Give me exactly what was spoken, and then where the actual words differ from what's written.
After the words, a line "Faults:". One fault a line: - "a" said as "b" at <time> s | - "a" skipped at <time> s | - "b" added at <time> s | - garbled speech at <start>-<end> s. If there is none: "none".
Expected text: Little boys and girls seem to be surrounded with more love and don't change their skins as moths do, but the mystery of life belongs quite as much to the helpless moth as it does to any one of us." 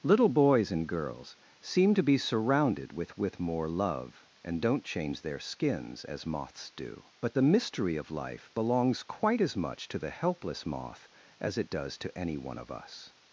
Little boys and girls seem to be surrounded with with more love and don't change their skins as moths do, but the mystery of life belongs quite as much to the helpless moth as it does to any one of us."
Faults:
- "with" added at 3.2 s